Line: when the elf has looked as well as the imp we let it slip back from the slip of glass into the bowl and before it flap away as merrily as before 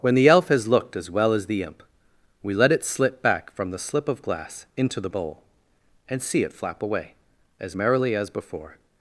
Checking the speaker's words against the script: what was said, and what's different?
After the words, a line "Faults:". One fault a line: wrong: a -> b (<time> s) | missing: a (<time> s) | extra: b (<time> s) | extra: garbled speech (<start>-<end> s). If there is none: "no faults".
when the elf has looked as well as the imp we let it slip back from the slip of glass into the bowl and see it flap away as merrily as before
Faults:
wrong: before -> see (6.2 s)